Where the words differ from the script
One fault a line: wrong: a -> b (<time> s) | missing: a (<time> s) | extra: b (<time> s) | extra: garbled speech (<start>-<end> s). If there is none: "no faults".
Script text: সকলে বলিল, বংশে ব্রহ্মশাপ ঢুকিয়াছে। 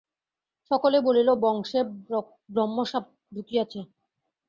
no faults